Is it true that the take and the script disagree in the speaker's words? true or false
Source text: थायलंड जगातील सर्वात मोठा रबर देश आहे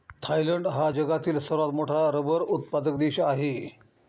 true